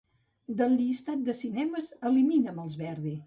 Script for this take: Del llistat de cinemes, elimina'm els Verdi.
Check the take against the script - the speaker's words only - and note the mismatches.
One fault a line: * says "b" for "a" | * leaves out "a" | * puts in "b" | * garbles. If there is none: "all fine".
all fine